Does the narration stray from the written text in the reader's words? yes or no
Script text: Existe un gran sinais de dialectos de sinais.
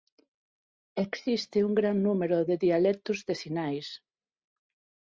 yes